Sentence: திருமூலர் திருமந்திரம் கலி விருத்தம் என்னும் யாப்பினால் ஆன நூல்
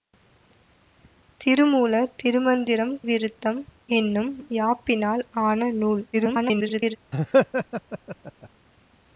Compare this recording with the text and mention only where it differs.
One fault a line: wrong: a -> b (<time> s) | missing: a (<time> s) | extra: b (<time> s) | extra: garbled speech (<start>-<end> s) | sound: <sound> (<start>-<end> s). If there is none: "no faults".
missing: கலி (3.0 s)
extra: garbled speech (6.1-7.0 s)
sound: laugh (7.1-8.5 s)